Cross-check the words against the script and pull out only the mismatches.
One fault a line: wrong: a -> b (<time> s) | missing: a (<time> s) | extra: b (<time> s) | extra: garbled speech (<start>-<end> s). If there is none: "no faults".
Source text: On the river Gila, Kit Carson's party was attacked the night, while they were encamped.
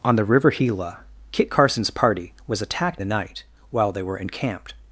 no faults